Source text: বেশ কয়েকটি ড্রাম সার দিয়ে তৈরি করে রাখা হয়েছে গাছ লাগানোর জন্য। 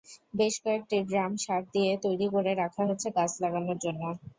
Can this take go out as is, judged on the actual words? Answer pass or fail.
pass